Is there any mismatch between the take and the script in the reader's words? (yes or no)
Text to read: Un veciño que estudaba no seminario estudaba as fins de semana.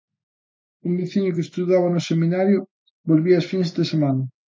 yes